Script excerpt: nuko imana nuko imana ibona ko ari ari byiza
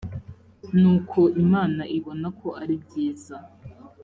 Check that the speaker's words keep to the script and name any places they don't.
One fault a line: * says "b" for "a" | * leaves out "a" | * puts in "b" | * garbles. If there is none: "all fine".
* leaves out "nuko imana"
* leaves out "ari"